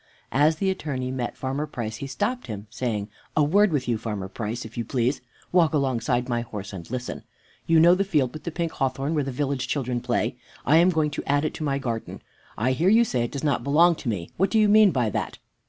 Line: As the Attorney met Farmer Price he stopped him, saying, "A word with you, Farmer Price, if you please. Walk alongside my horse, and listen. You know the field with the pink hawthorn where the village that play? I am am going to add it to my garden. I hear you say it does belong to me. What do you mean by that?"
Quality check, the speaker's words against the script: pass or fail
fail